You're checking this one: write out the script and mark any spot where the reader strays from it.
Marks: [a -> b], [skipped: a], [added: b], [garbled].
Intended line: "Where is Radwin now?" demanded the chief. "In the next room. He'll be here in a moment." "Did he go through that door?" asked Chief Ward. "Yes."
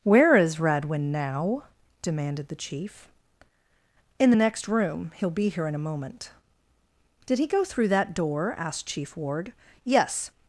"Where is Radwin now?" demanded the chief. "In the next room. He'll be here in a moment." "Did he go through that door?" asked Chief Ward. "Yes."